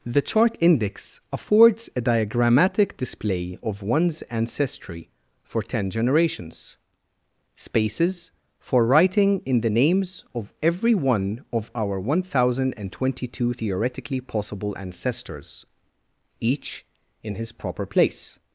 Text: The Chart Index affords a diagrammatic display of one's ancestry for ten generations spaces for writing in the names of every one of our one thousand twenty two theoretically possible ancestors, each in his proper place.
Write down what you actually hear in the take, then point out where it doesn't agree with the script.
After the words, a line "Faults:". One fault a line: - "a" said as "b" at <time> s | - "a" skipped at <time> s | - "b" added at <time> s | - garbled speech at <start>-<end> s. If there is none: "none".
The Chart Index affords a diagrammatic display of one's ancestry for ten generations spaces for writing in the names of every one of our one thousand twenty two theoretically possible ancestors, each in his proper place.
Faults:
none